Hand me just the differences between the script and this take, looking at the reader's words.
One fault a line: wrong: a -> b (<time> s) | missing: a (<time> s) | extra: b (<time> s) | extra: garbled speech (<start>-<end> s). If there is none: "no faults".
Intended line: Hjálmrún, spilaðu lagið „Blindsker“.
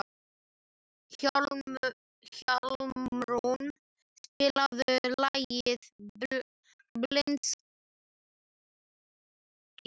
no faults